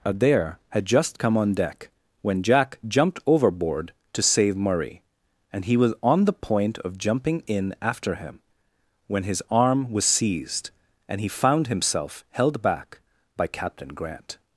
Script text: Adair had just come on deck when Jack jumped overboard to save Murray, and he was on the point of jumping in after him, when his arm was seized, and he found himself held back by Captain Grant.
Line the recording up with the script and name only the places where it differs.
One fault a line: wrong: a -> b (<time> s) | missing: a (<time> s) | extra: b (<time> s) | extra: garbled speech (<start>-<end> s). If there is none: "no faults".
no faults